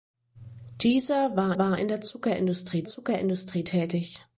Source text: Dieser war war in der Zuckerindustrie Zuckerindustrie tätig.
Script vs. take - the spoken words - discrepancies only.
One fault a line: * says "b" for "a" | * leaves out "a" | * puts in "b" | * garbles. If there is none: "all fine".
all fine